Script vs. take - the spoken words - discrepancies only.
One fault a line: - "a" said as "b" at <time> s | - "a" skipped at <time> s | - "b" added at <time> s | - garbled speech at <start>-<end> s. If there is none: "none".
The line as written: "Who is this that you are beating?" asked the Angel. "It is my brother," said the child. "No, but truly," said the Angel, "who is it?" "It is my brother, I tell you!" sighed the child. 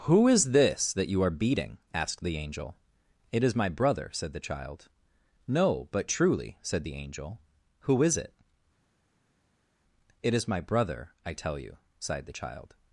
none